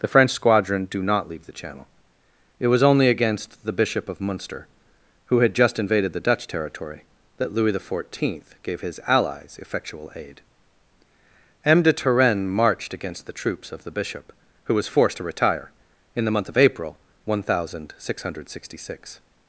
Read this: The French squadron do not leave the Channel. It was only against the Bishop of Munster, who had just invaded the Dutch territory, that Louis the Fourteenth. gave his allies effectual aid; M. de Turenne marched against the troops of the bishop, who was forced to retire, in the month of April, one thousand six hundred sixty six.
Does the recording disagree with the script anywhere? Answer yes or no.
no